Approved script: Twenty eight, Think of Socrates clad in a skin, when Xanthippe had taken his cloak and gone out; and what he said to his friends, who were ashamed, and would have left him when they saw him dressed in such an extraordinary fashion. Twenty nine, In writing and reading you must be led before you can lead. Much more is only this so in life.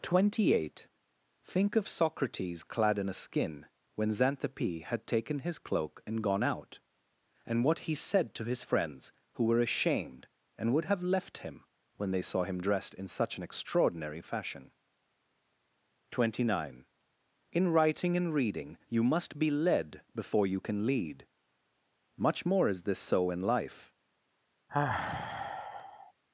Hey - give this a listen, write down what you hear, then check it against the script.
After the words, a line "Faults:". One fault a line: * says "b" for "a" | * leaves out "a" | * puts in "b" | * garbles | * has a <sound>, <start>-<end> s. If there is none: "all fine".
Twenty eight, Think of Socrates clad in a skin, when Xanthippe had taken his cloak and gone out; and what he said to his friends, who were ashamed, and would have left him when they saw him dressed in such an extraordinary fashion. Twenty nine, In writing and reading you must be led before you can lead. Much more is this so in life.
Faults:
* leaves out "only"
* has a sigh, 24.7-26.1 s